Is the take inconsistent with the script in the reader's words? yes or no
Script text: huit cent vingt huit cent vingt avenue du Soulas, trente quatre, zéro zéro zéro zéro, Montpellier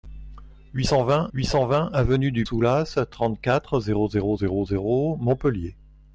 no